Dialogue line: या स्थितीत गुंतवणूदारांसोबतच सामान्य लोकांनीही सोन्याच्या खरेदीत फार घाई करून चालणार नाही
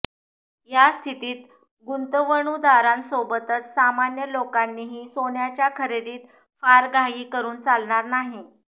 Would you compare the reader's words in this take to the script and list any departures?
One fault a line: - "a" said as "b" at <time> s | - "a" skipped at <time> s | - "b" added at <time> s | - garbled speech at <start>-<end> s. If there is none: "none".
none